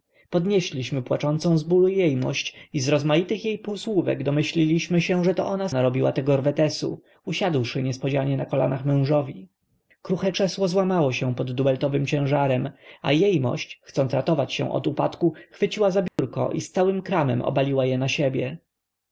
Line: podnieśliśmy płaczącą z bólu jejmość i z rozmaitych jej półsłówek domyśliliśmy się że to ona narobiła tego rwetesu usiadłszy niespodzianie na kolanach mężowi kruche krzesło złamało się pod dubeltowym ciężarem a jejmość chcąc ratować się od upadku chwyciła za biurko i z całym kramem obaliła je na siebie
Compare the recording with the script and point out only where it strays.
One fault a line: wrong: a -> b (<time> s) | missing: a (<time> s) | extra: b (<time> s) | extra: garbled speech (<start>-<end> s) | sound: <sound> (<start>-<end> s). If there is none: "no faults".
sound: dropout (16.1-16.2 s)